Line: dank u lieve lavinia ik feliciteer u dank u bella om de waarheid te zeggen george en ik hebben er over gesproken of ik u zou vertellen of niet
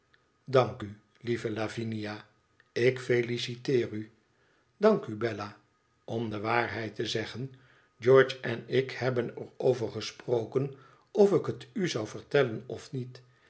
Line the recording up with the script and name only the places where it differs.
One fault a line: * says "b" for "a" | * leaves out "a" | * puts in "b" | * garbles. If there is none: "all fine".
* puts in "het"